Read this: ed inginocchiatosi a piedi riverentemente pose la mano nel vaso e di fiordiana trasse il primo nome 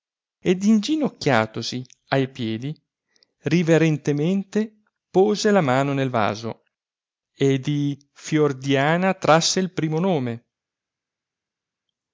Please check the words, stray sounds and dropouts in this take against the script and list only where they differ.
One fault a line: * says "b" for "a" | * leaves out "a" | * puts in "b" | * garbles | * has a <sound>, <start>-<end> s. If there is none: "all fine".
all fine